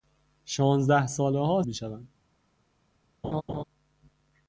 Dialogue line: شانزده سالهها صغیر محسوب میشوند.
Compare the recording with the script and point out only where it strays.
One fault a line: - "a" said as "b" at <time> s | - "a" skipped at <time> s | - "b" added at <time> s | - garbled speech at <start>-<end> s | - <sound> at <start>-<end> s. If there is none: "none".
- "صغیر محسوب" skipped at 1.6 s
- laugh at 3.2-3.6 s